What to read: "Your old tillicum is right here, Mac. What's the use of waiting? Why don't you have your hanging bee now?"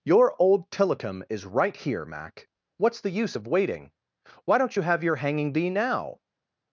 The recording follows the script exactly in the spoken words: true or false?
true